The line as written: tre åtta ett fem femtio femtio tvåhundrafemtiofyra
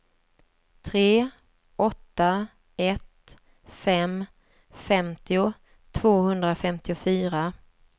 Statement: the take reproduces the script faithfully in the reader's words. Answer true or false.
false